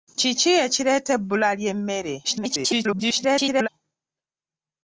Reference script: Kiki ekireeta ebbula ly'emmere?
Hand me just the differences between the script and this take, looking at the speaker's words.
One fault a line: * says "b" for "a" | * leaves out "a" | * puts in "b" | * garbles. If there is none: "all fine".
* garbles